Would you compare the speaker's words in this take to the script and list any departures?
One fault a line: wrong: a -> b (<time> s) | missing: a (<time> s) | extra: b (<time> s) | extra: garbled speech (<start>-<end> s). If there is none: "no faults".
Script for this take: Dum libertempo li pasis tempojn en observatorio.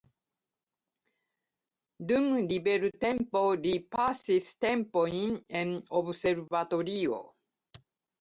no faults